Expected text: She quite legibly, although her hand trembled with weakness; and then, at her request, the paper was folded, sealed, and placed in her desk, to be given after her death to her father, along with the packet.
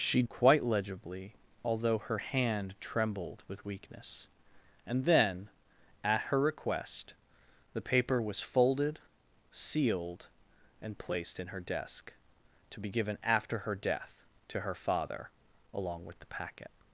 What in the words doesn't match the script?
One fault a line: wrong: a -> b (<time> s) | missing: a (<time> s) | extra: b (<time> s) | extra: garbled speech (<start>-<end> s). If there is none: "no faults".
no faults